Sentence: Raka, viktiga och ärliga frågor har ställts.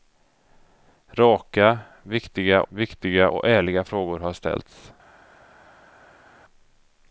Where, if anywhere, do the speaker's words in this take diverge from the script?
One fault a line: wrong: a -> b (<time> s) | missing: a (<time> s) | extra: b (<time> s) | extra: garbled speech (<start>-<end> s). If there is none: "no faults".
extra: viktiga (2.7 s)